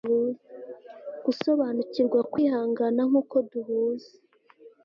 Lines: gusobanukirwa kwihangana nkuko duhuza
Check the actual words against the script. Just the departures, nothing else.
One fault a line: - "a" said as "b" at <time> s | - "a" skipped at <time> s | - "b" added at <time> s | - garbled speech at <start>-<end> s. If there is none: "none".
none